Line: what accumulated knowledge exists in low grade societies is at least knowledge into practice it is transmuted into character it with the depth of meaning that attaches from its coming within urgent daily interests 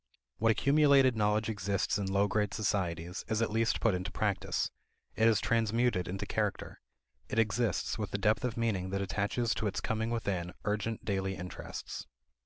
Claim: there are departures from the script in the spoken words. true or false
true